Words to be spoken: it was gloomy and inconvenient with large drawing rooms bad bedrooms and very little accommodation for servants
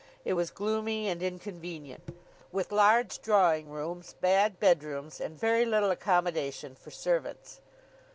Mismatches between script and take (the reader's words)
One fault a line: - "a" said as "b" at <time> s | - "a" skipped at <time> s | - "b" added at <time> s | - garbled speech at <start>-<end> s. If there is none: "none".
none